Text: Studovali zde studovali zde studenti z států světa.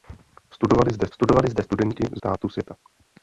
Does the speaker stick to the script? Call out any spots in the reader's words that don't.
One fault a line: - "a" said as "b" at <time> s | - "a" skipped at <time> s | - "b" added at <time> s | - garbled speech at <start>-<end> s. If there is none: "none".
none